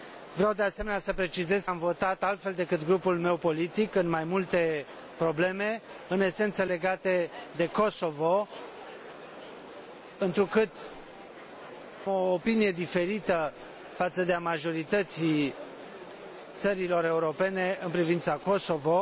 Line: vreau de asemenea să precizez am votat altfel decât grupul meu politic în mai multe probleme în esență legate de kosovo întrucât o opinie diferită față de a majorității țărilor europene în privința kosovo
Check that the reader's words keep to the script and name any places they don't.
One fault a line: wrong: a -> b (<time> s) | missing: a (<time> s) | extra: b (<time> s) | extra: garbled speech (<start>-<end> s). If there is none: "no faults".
no faults